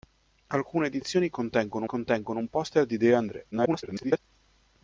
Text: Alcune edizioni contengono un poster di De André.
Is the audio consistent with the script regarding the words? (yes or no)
no